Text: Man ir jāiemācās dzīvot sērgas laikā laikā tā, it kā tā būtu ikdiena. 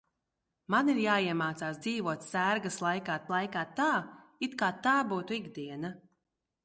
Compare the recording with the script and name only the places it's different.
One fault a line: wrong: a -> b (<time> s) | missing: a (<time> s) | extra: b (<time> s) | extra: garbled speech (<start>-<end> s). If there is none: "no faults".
no faults